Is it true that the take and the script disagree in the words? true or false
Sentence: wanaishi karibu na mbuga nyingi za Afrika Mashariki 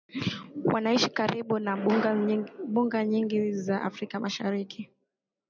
false